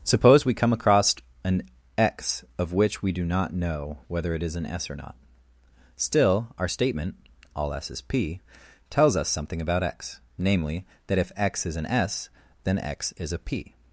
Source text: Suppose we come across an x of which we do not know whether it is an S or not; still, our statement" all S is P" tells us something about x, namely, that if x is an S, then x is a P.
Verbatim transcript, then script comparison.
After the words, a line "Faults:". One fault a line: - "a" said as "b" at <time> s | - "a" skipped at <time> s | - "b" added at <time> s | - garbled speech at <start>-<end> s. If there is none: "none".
Suppose we come across an x of which we do not know whether it is an S or not; still, our statement" all S is P" tells us something about x, namely, that if x is an S, then x is a P.
Faults:
none